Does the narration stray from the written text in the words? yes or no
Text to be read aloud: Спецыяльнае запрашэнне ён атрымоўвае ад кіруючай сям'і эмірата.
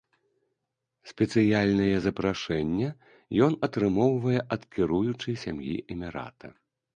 no